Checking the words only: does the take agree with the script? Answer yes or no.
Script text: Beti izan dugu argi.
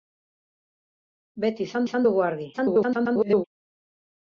no